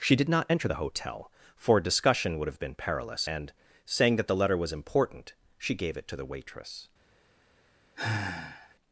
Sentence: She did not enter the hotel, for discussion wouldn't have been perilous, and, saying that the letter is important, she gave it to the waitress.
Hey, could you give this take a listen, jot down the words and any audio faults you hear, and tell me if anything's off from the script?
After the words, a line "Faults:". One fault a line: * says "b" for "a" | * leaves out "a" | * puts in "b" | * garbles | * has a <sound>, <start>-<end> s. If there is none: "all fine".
She did not enter the hotel, for discussion would have been perilous, and, saying that the letter was important, she gave it to the waitress.
Faults:
* says "would" for "wouldn't"
* says "was" for "is"
* has a sigh, 8.0-8.8 s